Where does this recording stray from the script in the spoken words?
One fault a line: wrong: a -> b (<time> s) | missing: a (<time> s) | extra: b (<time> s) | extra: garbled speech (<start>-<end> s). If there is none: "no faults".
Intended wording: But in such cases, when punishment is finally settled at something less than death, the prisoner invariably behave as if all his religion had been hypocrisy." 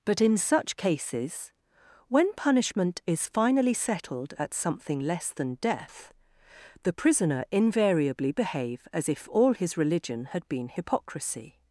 no faults